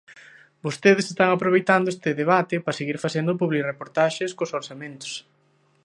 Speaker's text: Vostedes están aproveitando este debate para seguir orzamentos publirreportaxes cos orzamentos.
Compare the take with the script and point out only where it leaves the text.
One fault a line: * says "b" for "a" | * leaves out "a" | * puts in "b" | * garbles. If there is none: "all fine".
* says "facendo" for "orzamentos"